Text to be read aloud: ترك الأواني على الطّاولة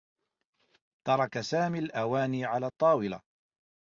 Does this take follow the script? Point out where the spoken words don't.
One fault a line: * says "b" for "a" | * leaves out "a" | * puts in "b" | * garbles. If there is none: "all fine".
* puts in "سامي"